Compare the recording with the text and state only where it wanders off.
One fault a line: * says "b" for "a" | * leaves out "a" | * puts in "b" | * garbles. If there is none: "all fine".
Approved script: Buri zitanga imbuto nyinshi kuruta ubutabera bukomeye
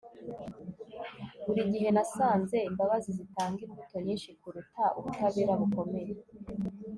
* puts in "gihe nasanze imbabazi"